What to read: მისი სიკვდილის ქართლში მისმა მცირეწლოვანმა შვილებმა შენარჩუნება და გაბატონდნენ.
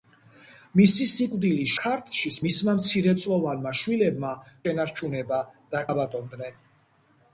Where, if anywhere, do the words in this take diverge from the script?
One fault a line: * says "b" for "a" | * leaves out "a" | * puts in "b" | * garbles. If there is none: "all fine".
all fine